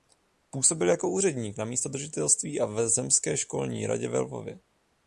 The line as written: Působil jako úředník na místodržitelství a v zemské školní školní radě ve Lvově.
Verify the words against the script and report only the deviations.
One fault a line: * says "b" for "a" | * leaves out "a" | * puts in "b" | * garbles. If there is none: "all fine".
* leaves out "školní"